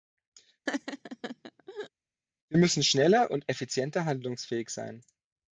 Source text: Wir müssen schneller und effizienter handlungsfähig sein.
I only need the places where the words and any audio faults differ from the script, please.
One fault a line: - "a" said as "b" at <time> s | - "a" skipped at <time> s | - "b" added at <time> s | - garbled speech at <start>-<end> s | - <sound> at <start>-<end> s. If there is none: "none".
- laugh at 0.7-1.9 s